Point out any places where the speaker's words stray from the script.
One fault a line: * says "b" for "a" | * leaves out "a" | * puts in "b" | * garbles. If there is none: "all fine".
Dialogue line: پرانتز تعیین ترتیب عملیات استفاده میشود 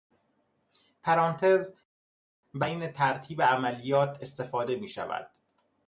* puts in "برای"